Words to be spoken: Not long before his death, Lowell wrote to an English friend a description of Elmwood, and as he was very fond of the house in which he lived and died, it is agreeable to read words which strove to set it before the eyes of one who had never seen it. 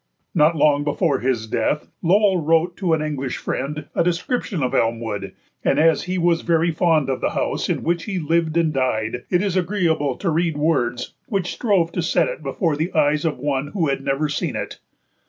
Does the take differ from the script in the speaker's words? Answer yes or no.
no